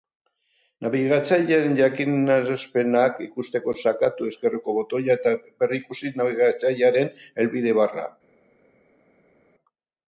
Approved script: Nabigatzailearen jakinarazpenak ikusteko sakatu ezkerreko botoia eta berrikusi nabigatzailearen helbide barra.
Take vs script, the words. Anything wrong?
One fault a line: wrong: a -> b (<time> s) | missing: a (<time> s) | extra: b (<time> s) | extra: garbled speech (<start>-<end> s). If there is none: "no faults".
no faults